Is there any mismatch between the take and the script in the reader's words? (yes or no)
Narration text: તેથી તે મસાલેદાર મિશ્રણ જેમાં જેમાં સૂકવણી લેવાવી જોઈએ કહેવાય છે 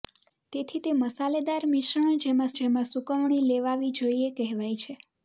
no